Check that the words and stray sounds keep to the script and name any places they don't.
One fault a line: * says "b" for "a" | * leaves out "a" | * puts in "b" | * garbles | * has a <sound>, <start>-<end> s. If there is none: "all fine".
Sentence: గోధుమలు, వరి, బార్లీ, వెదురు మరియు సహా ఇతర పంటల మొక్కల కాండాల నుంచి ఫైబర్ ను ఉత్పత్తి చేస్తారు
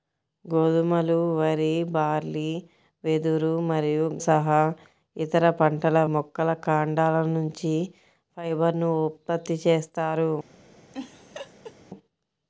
* has a laugh, 10.9-11.8 s